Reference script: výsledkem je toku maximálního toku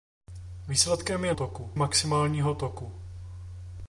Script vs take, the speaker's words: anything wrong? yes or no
no